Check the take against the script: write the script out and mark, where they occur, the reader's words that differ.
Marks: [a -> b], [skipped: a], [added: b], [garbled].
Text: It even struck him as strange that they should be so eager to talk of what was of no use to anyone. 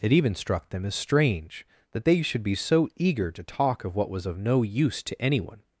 It even struck [him -> them] as strange that they should be so eager to talk of what was of no use to anyone.